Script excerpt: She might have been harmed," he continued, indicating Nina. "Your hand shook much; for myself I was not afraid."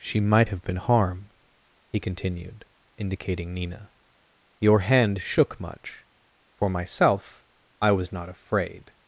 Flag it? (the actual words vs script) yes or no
yes